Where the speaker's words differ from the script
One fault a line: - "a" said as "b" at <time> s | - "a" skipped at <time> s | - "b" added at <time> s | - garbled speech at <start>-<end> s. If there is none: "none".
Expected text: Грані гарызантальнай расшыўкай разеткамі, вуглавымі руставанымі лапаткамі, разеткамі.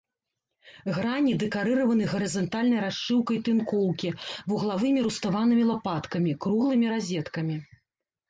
- "дэкарыраваны" added at 1.4 s
- "разеткамі" said as "тынкоўкі" at 3.5 s
- "круглымі" added at 6.5 s